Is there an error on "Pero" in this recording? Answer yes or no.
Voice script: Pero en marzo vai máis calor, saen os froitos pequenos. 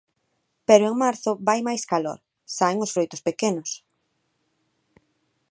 no